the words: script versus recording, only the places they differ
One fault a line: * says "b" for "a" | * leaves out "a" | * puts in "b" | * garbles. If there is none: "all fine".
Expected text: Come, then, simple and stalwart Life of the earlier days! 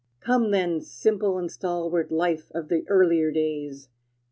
all fine